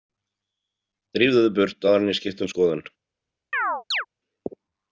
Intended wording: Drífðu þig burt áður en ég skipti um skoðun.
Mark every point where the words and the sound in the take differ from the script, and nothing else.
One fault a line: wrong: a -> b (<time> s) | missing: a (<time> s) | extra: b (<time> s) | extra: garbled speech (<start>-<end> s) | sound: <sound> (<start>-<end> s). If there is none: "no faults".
sound: chirp (3.5-4.1 s)